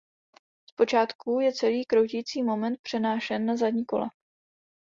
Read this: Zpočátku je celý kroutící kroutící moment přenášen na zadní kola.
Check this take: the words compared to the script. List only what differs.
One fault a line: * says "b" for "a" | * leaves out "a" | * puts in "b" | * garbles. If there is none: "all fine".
* leaves out "kroutící"